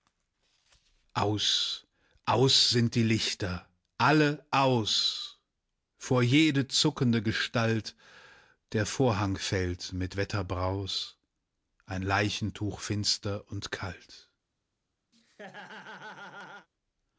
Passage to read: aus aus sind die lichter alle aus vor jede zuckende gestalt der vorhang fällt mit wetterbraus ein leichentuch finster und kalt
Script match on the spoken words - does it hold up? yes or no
yes